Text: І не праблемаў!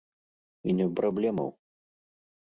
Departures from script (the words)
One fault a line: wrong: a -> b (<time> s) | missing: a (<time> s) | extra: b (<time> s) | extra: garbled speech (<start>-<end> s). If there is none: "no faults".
no faults